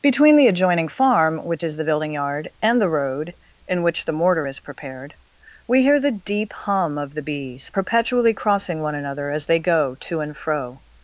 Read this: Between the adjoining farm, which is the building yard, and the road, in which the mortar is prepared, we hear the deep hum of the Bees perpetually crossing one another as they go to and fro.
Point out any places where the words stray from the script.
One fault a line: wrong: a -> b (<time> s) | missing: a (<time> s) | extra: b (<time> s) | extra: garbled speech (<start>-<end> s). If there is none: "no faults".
no faults